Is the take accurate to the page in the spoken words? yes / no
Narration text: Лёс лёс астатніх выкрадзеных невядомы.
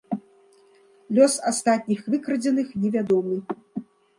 no